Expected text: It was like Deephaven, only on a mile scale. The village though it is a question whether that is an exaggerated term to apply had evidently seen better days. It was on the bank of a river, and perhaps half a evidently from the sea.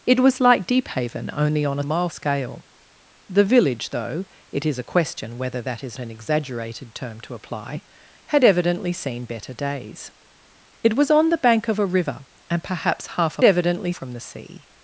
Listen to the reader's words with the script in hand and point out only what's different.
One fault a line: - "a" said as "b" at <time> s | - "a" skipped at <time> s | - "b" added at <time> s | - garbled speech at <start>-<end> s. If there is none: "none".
none